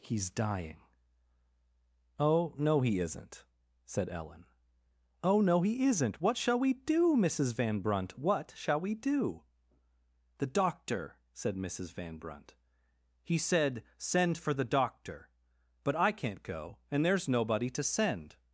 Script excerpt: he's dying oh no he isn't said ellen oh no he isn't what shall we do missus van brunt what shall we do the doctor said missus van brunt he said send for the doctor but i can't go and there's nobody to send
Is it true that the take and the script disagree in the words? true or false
false